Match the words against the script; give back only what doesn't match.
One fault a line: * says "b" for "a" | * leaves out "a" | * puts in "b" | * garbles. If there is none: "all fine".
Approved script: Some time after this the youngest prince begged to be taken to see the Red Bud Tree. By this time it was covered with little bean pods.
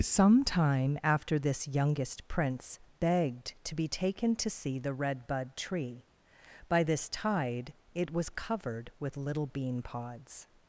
* leaves out "the"
* says "tide" for "time"